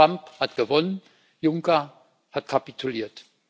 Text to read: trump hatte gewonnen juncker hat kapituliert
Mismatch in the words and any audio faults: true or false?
true